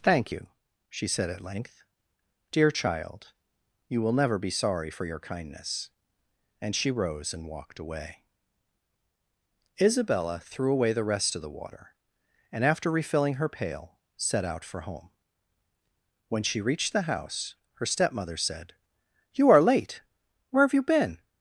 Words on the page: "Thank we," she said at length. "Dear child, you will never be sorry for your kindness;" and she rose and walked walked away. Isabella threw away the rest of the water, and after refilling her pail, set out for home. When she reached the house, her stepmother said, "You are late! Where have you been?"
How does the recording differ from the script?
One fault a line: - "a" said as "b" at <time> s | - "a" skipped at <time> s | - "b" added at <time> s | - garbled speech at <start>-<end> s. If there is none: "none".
- "we" said as "you" at 0.3 s
- "walked" skipped at 7.8 s